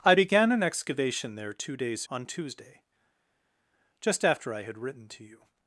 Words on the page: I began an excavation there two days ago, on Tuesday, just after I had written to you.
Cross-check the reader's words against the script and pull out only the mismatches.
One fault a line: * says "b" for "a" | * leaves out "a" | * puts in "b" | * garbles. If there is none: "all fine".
* leaves out "ago"